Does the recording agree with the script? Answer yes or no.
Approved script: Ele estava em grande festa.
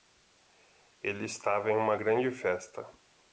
no